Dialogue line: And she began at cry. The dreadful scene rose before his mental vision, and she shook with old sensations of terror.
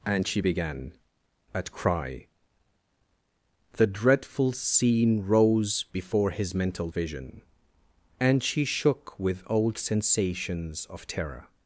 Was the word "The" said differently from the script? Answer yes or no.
no